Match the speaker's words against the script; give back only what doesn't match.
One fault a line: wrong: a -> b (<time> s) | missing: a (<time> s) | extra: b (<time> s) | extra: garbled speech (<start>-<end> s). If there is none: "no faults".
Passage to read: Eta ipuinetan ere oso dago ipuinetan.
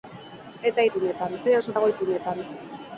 no faults